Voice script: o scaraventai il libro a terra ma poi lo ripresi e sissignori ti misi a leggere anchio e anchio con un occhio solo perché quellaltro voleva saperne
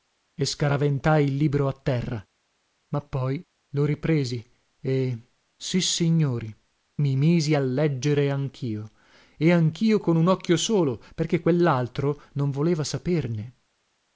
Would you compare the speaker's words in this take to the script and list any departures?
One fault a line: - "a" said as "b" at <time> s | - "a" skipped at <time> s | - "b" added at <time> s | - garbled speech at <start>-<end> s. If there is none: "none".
- "o" said as "e" at 0.3 s
- "ti" said as "mi" at 7.0 s
- "non" added at 12.3 s